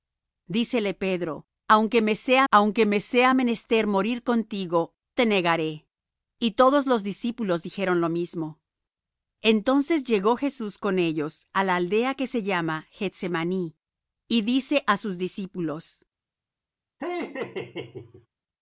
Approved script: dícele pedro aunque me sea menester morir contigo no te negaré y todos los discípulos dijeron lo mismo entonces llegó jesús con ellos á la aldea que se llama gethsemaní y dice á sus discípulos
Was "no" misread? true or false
true